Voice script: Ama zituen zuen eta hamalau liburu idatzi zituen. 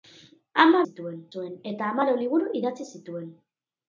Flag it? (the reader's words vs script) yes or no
no